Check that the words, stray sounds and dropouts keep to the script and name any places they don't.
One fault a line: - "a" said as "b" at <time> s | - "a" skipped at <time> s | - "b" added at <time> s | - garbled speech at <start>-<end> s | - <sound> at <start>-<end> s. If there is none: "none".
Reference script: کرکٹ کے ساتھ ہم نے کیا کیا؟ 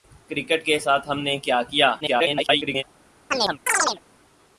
- garbled speech at 2.0-2.8 s
- chirp at 3.3-4.0 s